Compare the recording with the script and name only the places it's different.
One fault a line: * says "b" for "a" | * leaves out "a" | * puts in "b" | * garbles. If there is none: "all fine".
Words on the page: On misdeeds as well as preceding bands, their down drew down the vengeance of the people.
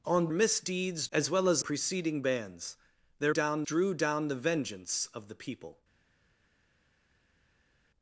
all fine